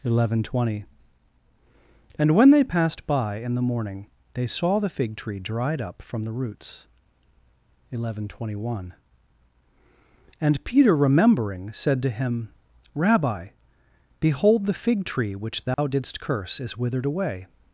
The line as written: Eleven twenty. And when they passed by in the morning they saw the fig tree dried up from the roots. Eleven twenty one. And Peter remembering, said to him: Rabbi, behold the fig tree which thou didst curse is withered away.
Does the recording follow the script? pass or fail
pass